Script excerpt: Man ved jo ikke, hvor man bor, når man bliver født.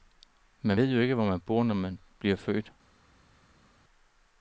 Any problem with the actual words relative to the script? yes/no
no